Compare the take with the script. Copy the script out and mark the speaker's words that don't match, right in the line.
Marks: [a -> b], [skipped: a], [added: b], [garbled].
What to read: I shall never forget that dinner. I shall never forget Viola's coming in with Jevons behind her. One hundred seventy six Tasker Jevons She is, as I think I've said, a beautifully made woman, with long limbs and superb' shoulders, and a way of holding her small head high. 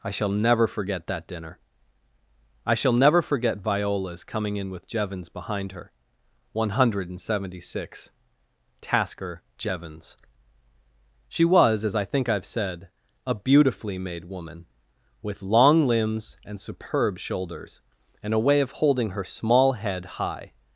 I shall never forget that dinner. I shall never forget Viola's coming in with Jevons behind her. One hundred seventy six Tasker Jevons She [is, -> was] as I think I've said, a beautifully made woman, with long limbs and superb' shoulders, and a way of holding her small head high.